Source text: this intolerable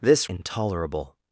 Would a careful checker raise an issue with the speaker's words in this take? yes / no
no